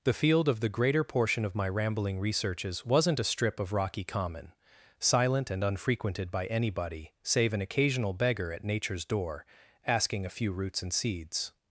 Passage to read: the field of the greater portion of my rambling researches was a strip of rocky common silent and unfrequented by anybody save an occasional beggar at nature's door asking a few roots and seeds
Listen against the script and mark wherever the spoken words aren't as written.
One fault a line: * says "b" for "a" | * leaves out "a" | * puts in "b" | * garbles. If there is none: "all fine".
* says "wasn't" for "was"